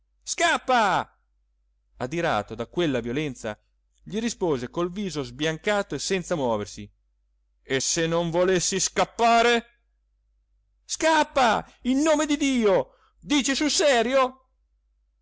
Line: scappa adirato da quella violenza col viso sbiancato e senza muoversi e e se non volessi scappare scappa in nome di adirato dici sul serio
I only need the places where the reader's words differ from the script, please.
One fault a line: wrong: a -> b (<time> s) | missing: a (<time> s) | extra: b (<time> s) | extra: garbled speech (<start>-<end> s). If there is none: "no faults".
extra: gli rispose (4.0 s)
missing: e (7.8 s)
wrong: adirato -> dio (12.4 s)